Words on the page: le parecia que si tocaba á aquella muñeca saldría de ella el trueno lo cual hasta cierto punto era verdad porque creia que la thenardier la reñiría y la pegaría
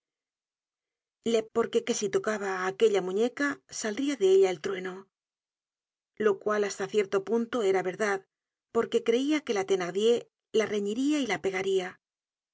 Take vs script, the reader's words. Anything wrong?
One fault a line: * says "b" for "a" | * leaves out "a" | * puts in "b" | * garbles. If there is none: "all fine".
* says "porque" for "parecia"